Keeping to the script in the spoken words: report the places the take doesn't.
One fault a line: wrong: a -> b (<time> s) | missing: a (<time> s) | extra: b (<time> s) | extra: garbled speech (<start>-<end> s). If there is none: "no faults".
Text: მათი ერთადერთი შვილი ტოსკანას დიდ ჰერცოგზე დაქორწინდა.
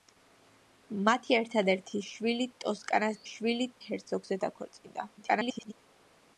wrong: დიდ -> შვილი (3.3 s)
extra: garbled speech (5.2-5.7 s)